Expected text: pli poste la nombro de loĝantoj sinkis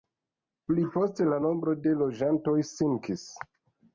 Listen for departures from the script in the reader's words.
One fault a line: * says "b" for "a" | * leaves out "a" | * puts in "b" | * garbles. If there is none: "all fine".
all fine